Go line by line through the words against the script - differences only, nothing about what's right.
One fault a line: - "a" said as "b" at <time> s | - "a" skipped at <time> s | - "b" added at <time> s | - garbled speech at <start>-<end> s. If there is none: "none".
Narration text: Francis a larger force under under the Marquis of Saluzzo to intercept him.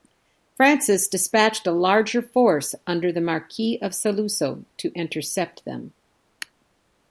- "dispatched" added at 1.1 s
- "under" skipped at 3.1 s
- "him" said as "them" at 5.6 s